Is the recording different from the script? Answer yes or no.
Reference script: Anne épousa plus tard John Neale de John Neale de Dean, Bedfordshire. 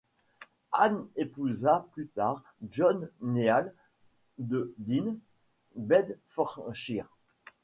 yes